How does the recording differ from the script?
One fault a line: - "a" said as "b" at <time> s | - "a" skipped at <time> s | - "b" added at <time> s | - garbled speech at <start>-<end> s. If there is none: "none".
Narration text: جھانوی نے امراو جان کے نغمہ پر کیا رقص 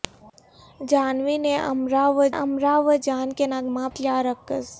- "امراو" added at 2.3 s
- "پر" skipped at 3.9 s